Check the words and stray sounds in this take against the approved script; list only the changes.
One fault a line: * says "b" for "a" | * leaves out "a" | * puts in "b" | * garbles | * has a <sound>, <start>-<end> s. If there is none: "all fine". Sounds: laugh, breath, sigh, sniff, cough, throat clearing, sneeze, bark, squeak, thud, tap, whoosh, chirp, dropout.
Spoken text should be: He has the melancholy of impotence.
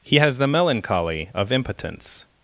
all fine